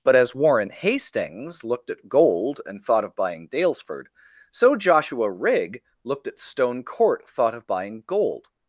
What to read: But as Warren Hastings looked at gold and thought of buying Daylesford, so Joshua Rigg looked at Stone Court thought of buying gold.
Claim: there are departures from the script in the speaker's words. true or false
false